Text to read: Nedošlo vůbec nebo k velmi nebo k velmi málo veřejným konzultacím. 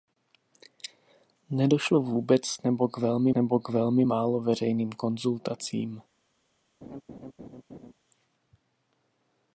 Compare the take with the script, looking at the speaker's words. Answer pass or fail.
pass